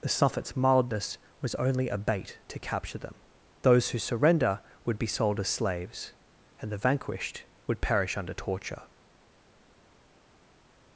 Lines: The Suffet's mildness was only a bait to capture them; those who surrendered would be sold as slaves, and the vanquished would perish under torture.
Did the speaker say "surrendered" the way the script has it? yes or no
no